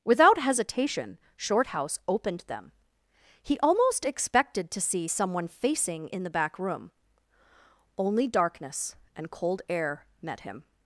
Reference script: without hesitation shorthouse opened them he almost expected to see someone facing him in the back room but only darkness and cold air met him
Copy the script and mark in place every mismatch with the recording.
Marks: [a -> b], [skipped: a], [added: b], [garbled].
without hesitation shorthouse opened them he almost expected to see someone facing [skipped: him] in the back room [skipped: but] only darkness and cold air met him